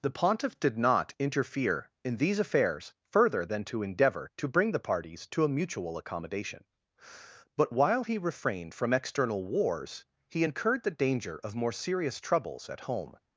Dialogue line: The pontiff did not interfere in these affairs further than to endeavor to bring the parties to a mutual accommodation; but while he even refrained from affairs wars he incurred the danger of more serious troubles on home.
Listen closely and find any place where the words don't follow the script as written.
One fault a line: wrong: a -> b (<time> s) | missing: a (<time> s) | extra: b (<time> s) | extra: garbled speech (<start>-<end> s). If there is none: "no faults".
missing: even (8.2 s)
wrong: affairs -> external (8.9 s)
wrong: on -> at (12.7 s)